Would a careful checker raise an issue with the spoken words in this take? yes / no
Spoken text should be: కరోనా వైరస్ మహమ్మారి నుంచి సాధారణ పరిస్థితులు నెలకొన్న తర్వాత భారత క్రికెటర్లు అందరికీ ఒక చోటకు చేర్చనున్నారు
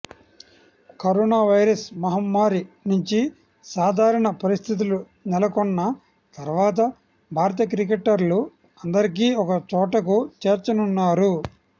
no